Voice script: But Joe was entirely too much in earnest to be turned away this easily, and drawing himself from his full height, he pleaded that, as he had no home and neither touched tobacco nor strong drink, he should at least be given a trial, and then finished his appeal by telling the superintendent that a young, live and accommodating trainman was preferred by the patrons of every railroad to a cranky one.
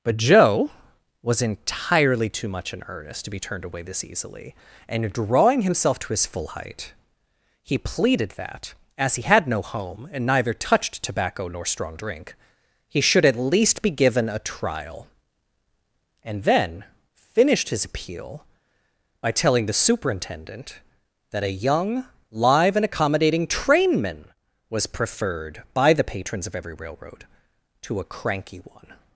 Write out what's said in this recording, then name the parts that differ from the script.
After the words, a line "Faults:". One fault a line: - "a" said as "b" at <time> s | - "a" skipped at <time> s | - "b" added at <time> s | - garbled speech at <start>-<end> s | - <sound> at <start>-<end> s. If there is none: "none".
But Joe was entirely too much in earnest to be turned away this easily, and drawing himself to his full height, he pleaded that, as he had no home and neither touched tobacco nor strong drink, he should at least be given a trial, and then finished his appeal by telling the superintendent that a young, live and accommodating trainman was preferred by the patrons of every railroad to a cranky one.
Faults:
- "from" said as "to" at 6.0 s